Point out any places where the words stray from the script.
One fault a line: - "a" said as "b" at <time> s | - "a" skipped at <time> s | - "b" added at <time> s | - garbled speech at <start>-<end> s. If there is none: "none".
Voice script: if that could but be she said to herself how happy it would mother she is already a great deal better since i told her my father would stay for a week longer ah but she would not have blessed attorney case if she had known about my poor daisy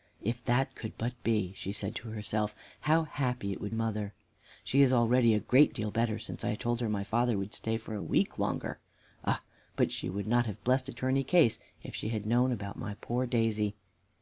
none